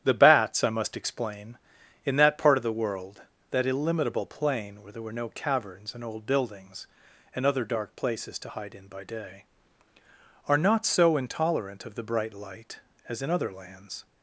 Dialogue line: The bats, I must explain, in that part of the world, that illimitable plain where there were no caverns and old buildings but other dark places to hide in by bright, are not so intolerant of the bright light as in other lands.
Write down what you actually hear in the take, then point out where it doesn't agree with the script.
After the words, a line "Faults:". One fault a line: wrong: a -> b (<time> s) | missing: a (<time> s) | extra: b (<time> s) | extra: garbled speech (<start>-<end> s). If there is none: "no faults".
The bats, I must explain, in that part of the world, that illimitable plain where there were no caverns and old buildings and other dark places to hide in by day, are not so intolerant of the bright light as in other lands.
Faults:
wrong: but -> and (7.3 s)
wrong: bright -> day (9.0 s)